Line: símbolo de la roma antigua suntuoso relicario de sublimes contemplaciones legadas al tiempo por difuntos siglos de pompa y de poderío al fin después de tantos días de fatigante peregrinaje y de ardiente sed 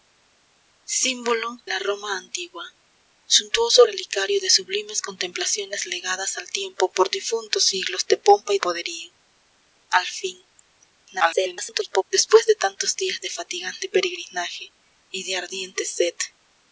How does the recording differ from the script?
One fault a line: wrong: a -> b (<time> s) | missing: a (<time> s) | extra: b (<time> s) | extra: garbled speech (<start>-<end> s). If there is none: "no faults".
missing: de (1.6 s)
missing: de (8.6 s)
extra: garbled speech (11.1-12.0 s)